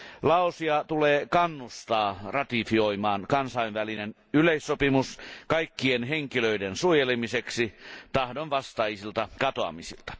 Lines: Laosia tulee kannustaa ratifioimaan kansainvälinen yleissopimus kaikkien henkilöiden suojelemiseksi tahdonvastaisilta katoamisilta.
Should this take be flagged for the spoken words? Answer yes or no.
no